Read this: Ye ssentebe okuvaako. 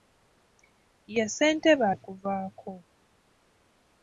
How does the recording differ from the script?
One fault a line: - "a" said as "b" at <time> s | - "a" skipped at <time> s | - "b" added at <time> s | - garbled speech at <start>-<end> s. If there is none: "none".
none